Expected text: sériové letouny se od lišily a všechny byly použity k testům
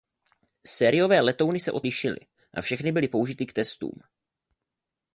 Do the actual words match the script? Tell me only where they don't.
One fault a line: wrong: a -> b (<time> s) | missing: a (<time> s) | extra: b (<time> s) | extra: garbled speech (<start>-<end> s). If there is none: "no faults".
no faults